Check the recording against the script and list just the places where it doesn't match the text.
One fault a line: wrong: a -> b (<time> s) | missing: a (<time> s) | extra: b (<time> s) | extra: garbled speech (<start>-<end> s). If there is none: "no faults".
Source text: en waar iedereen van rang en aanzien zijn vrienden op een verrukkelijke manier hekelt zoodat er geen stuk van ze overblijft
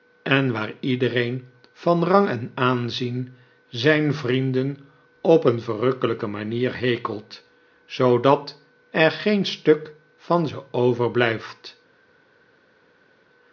no faults